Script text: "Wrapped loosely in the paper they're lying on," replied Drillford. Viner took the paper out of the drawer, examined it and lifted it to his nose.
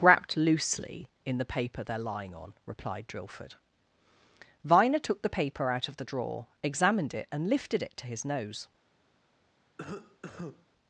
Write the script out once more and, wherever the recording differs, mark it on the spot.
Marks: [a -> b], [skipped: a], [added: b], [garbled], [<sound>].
"Wrapped loosely in the paper they're lying on," replied Drillford. Viner took the paper out of the drawer, examined it and lifted it to his nose. [cough]